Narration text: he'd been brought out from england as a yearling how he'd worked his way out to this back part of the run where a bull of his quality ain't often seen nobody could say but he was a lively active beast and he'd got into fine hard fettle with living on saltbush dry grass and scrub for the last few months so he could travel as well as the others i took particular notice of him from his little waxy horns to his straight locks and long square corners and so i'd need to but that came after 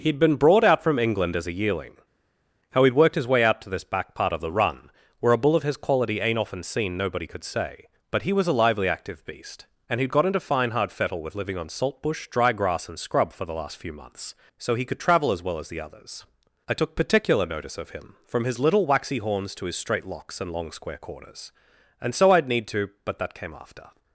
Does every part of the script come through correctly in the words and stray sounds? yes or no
yes